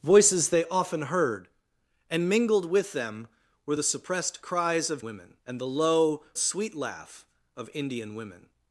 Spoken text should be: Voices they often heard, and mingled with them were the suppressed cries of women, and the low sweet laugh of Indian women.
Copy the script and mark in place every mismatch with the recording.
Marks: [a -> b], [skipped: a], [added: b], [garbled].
Voices they often heard, and mingled with them were the suppressed cries of women, and the low sweet laugh of Indian women.